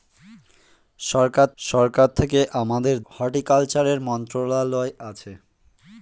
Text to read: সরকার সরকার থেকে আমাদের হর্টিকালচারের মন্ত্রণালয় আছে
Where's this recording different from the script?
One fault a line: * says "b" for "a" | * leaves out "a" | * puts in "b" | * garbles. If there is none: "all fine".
all fine